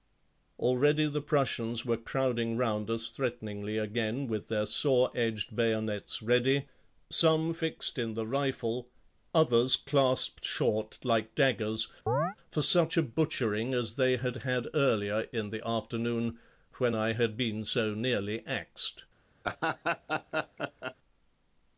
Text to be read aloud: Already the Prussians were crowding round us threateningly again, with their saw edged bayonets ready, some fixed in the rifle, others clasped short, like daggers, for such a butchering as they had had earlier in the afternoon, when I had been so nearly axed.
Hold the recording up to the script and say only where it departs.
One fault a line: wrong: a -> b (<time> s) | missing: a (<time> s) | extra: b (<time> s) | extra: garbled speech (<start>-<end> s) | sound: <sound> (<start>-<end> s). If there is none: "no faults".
sound: chirp (12.1-12.4 s)
sound: laugh (19.4-20.9 s)